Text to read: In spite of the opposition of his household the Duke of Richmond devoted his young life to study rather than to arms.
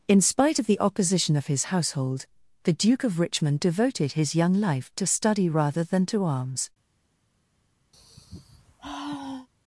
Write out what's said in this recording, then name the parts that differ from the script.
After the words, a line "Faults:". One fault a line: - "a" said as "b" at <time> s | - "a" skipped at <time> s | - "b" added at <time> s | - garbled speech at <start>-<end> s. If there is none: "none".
In spite of the opposition of his household the Duke of Richmond devoted his young life to study rather than to arms.
Faults:
none